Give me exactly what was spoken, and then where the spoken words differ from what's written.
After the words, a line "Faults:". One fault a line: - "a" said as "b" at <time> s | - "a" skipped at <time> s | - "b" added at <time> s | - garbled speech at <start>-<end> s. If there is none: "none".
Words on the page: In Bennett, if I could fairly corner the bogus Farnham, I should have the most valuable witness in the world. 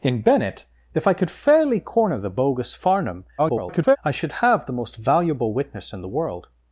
In Bennett, if I could fairly corner the bogus Farnham, [garbled] I should have the most valuable witness in the world.
Faults:
- garbled speech at 3.4-4.0 s